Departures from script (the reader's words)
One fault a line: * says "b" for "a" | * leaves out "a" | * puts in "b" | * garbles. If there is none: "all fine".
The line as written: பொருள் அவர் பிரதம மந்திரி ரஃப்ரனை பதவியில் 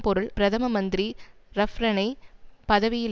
* leaves out "அவர்"